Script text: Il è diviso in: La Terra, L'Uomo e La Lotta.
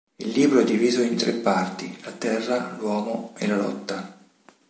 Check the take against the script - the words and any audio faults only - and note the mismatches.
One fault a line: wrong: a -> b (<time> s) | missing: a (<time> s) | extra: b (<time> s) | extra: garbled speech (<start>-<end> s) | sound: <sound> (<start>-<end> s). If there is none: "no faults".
extra: libro (0.3 s)
extra: tre parti (1.1 s)